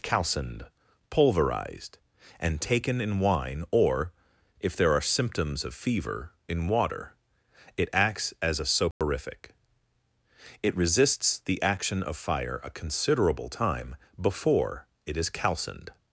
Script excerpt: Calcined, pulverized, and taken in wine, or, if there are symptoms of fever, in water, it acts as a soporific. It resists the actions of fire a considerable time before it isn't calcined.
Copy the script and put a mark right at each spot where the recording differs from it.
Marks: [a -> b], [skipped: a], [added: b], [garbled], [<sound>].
Calcined, pulverized, and taken in wine, or, if there are symptoms of fever, in water, it acts as a soporific. [dropout] It resists the [actions -> action] of fire a considerable time before it [isn't -> is] calcined.